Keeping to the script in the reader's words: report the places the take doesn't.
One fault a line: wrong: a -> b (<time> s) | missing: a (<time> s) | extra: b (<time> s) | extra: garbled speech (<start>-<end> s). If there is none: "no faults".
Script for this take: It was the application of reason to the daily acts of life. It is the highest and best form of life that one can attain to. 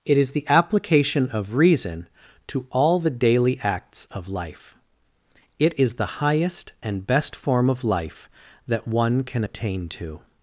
wrong: was -> is (0.2 s)
extra: all (2.7 s)